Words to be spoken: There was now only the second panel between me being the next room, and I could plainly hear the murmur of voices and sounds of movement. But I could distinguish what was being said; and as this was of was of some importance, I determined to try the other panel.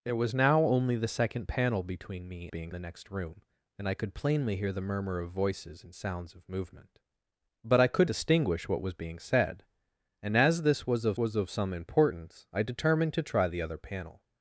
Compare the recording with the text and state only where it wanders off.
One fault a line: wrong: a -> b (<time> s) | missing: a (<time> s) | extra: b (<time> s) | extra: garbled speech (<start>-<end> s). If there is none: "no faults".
no faults